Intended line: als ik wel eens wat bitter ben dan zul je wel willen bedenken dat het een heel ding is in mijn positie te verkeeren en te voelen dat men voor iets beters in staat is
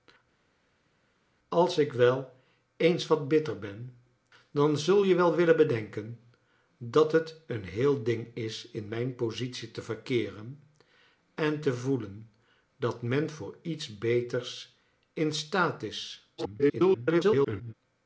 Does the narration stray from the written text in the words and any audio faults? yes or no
yes